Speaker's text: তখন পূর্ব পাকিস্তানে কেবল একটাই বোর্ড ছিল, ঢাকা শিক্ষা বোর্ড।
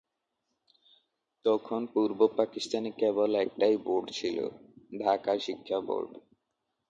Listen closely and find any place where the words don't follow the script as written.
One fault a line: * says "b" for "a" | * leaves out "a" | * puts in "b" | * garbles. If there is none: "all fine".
all fine